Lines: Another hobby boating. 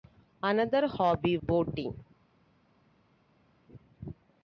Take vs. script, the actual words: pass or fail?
pass